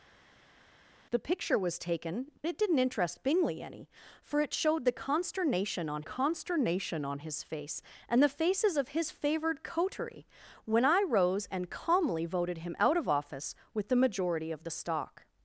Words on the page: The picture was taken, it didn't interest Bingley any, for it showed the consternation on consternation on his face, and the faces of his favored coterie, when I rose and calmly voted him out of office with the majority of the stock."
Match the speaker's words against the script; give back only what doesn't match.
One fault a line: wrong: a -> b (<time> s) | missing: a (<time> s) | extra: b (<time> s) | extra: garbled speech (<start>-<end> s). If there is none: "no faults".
no faults